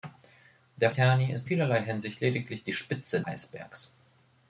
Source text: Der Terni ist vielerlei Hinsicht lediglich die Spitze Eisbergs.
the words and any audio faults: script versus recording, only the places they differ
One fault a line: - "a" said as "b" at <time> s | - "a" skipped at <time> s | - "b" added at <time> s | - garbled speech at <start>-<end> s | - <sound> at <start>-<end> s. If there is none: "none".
none